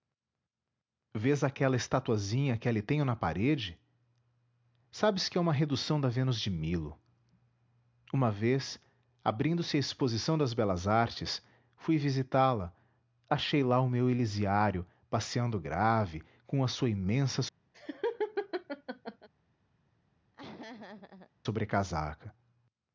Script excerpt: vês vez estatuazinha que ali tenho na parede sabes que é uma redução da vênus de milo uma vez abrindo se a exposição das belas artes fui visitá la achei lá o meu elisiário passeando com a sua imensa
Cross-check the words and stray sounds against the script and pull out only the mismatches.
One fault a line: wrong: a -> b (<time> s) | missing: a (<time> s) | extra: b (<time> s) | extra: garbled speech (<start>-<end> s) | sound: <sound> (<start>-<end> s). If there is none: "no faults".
wrong: vez -> aquela (1.4 s)
extra: grave (15.6 s)
sound: laugh (17.7-19.3 s)
sound: laugh (20.3-21.3 s)